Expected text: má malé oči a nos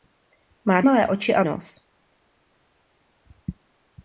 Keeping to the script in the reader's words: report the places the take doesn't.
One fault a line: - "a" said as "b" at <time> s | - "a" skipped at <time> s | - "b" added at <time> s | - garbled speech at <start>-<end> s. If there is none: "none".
none